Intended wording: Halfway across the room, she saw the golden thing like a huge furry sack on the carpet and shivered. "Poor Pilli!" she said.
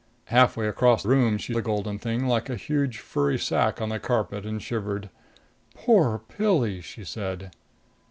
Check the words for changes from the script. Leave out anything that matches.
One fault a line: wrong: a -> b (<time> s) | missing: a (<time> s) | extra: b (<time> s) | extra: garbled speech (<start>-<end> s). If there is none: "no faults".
missing: the (1.0 s)
missing: saw (1.6 s)